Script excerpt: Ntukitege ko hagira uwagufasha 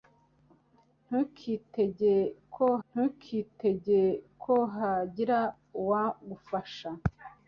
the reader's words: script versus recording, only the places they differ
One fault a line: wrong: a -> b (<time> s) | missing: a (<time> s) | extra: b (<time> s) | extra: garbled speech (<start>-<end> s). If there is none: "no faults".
extra: ntukitege ko (2.9 s)